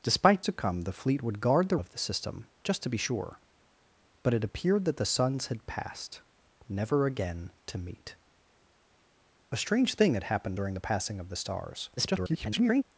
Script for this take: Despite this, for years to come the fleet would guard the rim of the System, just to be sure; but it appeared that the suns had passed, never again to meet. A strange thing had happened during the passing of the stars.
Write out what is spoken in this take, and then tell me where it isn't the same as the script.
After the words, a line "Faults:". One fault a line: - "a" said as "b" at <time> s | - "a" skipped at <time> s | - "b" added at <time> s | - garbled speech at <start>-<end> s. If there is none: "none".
Despite to come the fleet would guard the of the System, just to be sure; but it appeared that the suns had passed, never again to meet. A strange thing had happened during the passing of the stars. [garbled]
Faults:
- "this for years" skipped at 0.4 s
- "rim" skipped at 1.8 s
- garbled speech at 12.0-12.8 s